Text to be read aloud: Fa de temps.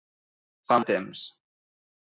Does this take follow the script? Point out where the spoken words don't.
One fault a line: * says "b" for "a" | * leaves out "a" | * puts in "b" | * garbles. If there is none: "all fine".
all fine